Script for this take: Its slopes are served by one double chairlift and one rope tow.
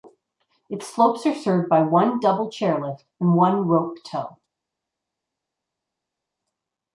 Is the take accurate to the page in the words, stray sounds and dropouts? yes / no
yes